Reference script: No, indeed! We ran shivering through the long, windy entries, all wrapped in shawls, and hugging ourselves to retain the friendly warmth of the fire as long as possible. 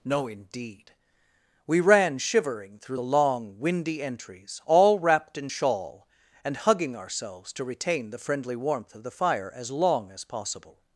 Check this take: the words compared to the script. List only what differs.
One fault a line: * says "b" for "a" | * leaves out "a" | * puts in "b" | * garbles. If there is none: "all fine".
* says "shawl" for "shawls"